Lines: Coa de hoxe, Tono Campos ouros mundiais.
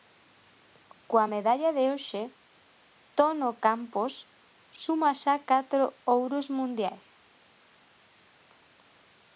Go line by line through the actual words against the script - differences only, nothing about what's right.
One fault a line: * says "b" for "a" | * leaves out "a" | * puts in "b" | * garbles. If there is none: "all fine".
* puts in "medalla"
* puts in "suma xa catro"